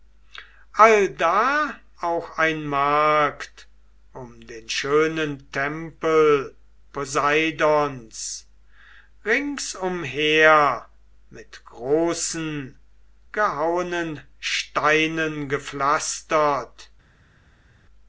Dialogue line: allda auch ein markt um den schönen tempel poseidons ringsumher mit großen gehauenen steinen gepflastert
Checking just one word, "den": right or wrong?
right